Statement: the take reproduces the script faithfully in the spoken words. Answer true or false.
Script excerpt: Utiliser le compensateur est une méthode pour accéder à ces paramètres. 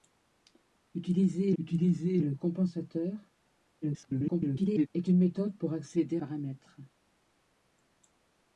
false